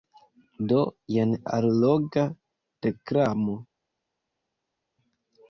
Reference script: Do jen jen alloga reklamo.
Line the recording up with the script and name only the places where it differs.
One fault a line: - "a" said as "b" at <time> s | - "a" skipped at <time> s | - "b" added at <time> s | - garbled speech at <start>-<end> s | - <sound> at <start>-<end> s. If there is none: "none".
- "jen" skipped at 1.4 s